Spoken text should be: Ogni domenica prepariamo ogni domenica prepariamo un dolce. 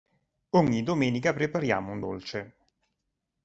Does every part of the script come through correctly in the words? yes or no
no